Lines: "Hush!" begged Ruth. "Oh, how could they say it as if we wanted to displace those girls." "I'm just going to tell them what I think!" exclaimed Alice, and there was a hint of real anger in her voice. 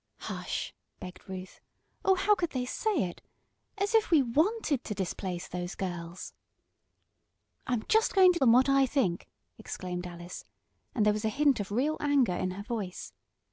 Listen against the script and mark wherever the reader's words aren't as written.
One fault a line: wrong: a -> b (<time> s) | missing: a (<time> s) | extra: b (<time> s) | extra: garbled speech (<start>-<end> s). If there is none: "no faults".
missing: tell (8.4 s)